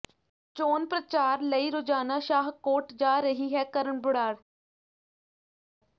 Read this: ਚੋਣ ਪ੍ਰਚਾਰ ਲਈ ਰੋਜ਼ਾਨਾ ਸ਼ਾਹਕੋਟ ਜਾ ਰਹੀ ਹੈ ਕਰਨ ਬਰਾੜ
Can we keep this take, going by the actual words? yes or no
yes